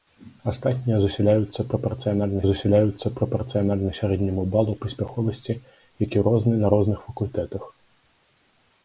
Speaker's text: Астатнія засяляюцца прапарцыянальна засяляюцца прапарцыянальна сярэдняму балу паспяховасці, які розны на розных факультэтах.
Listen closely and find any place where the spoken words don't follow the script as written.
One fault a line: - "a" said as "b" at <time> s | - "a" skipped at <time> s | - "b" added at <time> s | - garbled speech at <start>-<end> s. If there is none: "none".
none